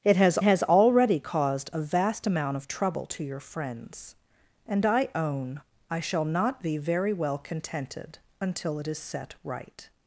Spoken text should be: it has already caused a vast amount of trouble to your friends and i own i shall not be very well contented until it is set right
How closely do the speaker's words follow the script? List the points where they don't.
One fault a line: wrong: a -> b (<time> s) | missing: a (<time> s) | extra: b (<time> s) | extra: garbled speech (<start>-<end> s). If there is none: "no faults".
extra: has (0.4 s)